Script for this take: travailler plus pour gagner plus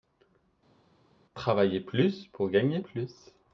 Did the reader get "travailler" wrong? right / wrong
right